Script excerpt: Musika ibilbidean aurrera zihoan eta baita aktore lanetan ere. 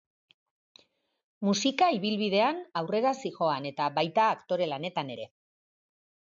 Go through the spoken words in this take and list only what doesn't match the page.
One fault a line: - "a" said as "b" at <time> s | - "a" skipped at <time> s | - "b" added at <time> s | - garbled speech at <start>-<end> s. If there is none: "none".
none